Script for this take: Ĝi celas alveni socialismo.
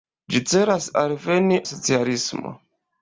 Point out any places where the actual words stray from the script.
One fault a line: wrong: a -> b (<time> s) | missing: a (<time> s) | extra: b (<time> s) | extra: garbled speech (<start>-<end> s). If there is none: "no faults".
no faults